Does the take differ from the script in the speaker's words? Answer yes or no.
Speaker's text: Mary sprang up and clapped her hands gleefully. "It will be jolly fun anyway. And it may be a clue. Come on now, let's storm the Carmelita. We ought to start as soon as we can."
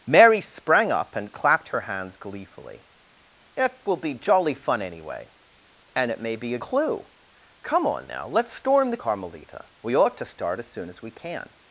no